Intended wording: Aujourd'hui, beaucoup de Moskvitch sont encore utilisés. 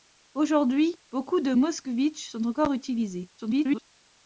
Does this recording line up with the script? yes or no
no